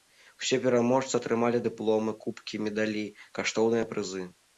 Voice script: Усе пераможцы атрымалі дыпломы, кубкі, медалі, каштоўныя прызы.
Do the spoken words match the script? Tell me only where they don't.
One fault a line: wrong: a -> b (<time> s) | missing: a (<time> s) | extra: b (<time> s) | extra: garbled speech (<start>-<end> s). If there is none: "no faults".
no faults